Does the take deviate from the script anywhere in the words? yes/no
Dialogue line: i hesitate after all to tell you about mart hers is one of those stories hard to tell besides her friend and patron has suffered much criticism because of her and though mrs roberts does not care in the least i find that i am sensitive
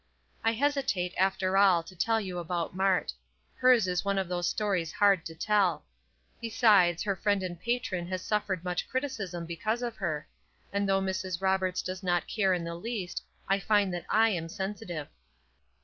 no